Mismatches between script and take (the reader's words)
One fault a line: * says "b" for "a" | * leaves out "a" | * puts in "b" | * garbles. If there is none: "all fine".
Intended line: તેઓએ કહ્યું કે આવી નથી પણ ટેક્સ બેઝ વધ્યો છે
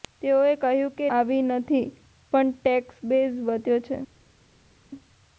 all fine